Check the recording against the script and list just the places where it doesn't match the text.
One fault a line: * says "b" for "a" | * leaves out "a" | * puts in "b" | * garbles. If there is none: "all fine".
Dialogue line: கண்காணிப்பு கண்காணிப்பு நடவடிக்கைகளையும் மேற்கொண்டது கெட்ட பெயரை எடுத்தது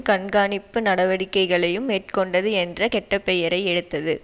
* leaves out "கண்காணிப்பு"
* puts in "என்ற"